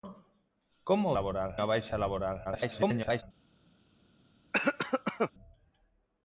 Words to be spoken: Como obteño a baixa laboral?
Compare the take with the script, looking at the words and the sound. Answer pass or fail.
fail